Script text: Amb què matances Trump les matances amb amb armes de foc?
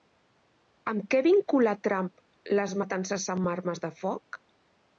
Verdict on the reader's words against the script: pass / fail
fail